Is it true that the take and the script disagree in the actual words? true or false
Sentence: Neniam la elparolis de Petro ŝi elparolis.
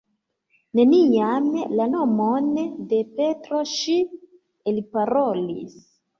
true